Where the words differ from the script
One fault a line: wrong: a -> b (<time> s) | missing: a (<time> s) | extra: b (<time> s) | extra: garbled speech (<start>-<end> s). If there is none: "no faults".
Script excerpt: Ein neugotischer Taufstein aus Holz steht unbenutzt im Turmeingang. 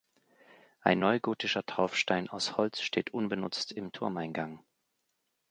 no faults